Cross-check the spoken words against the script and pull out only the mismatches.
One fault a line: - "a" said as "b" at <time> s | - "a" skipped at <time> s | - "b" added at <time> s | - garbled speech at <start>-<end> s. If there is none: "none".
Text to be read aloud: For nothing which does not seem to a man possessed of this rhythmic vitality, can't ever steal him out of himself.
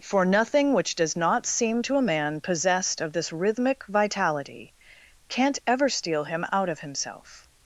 none